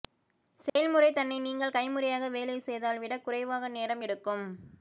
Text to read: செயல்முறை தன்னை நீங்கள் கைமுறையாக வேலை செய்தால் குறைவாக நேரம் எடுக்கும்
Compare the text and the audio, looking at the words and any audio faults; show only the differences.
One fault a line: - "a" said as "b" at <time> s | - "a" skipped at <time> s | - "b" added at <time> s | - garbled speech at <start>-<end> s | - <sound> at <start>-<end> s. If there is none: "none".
- dropout at 0.7-0.8 s
- "விட" added at 3.0 s